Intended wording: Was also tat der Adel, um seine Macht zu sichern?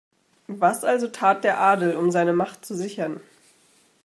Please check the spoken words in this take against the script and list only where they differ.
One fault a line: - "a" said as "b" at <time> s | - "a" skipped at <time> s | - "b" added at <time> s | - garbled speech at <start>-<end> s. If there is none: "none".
none